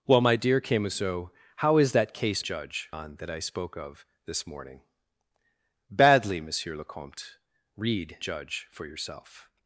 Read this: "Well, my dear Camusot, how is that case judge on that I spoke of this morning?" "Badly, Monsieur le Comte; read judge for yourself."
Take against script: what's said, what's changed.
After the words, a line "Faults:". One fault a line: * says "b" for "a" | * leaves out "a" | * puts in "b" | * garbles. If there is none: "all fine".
"Well, my dear Camusot, how is that case judge on that I spoke of this morning?" "Badly, Monsieur le Comte; read judge for yourself."
Faults:
all fine